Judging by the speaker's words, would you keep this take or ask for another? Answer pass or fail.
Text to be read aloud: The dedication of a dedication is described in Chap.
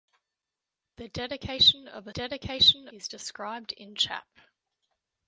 pass